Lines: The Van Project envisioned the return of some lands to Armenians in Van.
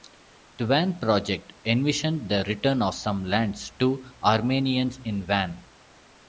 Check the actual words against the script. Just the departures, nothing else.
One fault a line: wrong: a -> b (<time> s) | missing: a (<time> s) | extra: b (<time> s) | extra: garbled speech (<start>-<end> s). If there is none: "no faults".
no faults